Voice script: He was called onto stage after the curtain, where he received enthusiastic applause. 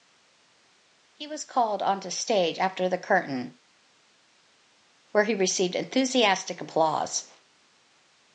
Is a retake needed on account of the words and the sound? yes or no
no